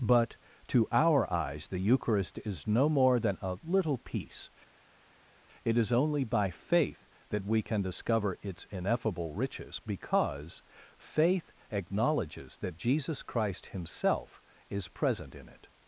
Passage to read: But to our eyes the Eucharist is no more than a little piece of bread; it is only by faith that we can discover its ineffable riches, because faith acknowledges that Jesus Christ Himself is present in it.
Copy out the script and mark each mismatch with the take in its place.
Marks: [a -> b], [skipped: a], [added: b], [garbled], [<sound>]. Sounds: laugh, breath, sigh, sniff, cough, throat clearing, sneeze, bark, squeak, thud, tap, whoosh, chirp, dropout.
But to our eyes the Eucharist is no more than a little piece [skipped: of bread;] it is only by faith that we can discover its ineffable riches, because faith acknowledges that Jesus Christ Himself is present in it.